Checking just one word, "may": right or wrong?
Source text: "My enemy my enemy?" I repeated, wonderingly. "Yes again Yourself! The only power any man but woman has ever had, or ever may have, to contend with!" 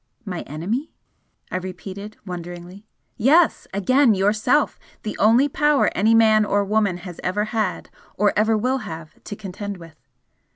wrong